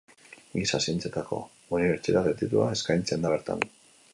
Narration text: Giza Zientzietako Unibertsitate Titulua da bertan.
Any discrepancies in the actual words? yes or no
yes